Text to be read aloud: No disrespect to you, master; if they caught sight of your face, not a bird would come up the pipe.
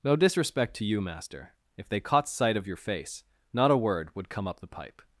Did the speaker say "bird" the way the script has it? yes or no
no